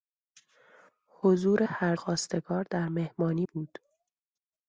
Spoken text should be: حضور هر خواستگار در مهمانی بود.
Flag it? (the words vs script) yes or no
no